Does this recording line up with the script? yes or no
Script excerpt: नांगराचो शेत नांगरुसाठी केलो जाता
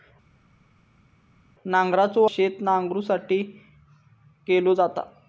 yes